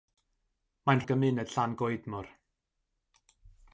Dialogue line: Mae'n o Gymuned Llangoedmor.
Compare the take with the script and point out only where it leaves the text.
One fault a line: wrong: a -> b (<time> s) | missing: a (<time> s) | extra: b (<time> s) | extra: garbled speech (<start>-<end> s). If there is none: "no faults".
no faults